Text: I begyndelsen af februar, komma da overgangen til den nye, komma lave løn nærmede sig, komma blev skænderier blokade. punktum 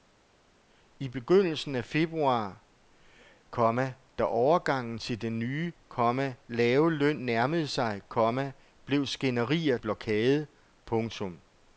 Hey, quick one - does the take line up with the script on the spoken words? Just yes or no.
yes